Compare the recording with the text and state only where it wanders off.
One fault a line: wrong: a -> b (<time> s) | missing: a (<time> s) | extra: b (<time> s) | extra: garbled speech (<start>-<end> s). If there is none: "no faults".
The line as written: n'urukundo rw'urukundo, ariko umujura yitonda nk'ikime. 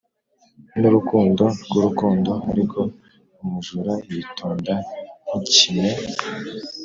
no faults